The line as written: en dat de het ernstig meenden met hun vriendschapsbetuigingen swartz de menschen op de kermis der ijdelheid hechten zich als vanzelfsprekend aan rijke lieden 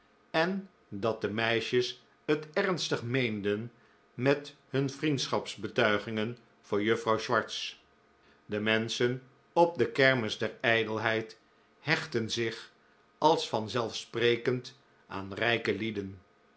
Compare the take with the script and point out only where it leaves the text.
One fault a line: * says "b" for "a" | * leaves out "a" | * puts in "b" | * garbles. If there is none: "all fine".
* puts in "meisjes"
* puts in "voor juffrouw"